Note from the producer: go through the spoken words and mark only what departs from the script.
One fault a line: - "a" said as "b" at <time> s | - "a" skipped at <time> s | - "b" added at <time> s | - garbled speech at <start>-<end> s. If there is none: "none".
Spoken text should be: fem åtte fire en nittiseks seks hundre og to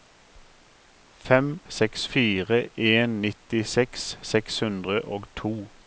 - "åtte" said as "seks" at 1.7 s